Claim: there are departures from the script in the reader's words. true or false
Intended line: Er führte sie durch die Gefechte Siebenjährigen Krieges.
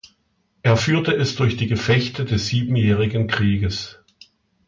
true